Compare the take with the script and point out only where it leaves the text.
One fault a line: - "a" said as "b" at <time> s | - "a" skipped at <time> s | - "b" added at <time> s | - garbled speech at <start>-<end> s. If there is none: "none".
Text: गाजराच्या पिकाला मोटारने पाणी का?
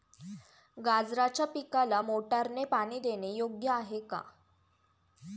- "देणे योग्य आहे" added at 3.0 s